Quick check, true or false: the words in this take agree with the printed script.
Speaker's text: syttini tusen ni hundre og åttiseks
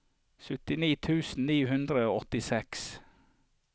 true